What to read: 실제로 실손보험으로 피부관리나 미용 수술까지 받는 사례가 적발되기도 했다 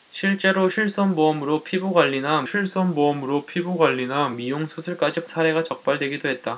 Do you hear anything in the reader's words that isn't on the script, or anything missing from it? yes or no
yes